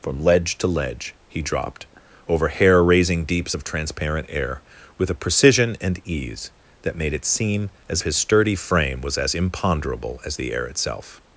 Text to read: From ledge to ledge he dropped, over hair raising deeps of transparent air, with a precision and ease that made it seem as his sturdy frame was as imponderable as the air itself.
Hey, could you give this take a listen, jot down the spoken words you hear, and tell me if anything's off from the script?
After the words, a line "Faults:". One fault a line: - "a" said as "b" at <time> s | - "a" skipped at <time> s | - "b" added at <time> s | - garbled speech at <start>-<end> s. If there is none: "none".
From ledge to ledge he dropped, over hair raising deeps of transparent air, with a precision and ease that made it seem as his sturdy frame was as imponderable as the air itself.
Faults:
none